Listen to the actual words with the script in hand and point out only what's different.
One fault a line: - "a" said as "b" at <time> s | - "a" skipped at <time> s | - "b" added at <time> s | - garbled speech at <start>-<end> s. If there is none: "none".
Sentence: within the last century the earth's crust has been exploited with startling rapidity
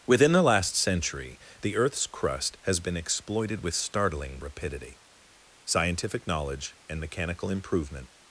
- "scientific knowledge and mechanical improvement" added at 5.6 s